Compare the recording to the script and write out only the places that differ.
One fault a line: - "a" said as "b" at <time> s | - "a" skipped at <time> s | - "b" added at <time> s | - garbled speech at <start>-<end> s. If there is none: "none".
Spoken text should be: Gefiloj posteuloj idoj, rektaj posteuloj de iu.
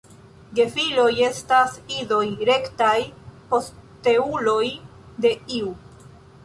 - "posteuloj" said as "estas" at 1.2 s